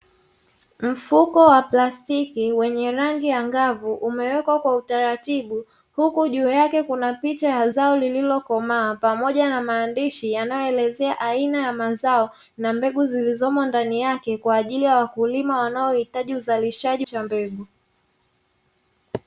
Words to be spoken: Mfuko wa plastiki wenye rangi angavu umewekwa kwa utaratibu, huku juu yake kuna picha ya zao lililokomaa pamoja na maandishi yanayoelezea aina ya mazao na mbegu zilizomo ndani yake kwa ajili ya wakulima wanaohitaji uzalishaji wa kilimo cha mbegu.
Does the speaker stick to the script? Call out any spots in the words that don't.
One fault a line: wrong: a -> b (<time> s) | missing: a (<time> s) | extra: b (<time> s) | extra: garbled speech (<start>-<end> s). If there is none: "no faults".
missing: wa kilimo (17.1 s)